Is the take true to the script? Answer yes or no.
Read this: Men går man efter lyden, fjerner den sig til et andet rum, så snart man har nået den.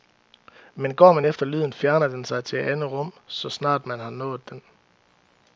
yes